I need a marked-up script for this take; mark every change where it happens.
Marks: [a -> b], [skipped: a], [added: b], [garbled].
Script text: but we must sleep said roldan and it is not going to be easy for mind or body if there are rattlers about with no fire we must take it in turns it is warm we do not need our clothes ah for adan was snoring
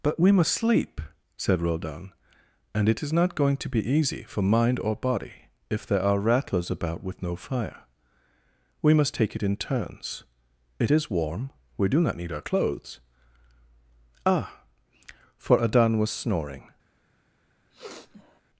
but we must sleep said roldan and it is not going to be easy for mind or body if there are rattlers about with no fire we must take it in turns it is warm we do not need our clothes ah for adan was snoring